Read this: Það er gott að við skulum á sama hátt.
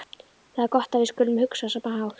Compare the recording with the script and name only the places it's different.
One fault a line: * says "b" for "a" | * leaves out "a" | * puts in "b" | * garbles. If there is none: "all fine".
* puts in "hugsa"